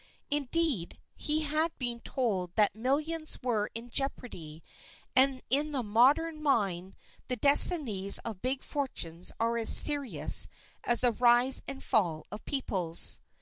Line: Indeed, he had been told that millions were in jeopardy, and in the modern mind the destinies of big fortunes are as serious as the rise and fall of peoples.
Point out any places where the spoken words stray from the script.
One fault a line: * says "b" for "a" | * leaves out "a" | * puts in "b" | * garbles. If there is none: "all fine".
all fine